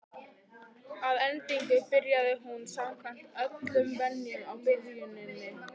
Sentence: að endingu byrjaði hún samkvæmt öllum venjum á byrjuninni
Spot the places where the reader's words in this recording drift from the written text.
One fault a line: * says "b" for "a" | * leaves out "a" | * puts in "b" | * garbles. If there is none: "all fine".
all fine